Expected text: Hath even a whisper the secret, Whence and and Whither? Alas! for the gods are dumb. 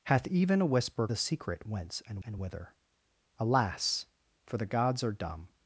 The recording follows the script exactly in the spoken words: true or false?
true